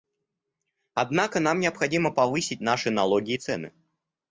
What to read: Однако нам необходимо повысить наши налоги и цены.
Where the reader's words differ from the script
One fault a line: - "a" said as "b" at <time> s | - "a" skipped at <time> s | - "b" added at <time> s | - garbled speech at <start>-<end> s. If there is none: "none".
none